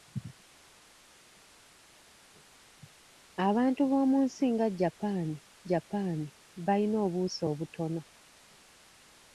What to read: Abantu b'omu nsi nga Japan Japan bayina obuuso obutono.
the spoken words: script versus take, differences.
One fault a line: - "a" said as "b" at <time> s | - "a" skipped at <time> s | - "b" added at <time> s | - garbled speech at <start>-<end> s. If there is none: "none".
none